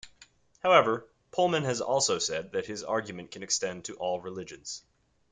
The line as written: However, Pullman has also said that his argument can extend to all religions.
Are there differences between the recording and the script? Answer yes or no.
no